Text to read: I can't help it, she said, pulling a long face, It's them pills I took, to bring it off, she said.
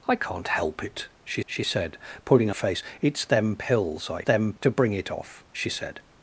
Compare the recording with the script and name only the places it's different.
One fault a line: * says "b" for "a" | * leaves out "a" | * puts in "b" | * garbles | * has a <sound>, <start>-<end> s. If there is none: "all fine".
* puts in "she"
* leaves out "long"
* says "them" for "took"